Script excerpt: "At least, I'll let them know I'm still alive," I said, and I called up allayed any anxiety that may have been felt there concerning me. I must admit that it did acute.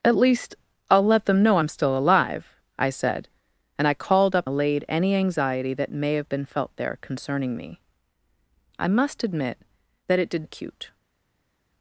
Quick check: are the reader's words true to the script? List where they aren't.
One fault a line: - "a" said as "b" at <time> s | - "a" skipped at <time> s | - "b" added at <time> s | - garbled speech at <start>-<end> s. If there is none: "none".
none